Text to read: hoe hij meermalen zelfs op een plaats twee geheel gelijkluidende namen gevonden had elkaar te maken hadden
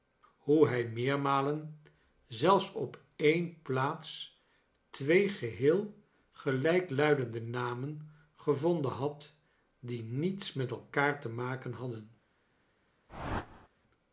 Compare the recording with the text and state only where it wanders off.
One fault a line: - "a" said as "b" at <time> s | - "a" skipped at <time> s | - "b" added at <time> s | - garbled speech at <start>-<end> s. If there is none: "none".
- "die niets met" added at 9.8 s